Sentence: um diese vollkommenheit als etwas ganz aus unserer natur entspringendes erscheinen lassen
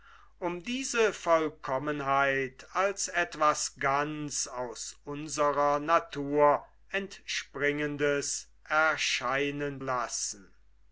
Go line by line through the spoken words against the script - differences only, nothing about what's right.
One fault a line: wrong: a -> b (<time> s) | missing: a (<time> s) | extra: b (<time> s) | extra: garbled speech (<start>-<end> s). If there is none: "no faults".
no faults